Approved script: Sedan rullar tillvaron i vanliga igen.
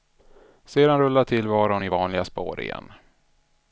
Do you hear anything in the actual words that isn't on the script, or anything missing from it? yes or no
yes